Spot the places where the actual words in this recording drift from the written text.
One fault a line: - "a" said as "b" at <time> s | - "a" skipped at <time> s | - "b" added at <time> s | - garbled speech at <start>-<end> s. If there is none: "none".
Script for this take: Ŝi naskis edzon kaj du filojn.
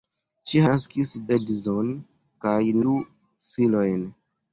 none